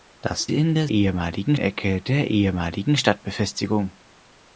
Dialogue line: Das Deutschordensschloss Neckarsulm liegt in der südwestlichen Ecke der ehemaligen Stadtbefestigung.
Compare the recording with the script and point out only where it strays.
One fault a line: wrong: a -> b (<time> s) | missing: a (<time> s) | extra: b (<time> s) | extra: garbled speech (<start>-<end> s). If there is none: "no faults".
missing: Deutschordensschloss Neckarsulm liegt (0.5 s)
wrong: südwestlichen -> ehemaligen (0.9 s)